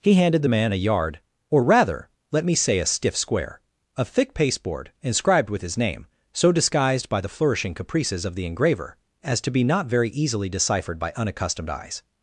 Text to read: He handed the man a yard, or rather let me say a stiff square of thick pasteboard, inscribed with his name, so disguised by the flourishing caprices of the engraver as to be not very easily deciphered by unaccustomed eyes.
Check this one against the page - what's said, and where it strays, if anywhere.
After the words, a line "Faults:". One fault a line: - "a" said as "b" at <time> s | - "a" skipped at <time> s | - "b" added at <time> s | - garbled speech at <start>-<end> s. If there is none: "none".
He handed the man a yard, or rather let me say a stiff square of thick pasteboard, inscribed with his name, so disguised by the flourishing caprices of the engraver as to be not very easily deciphered by unaccustomed eyes.
Faults:
none